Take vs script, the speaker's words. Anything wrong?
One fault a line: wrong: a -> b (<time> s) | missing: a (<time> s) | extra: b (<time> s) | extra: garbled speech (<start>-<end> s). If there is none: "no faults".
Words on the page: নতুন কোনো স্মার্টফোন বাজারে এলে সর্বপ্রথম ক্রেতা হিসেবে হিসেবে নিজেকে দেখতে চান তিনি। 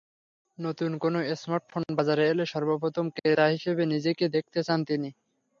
missing: হিসেবে (3.8 s)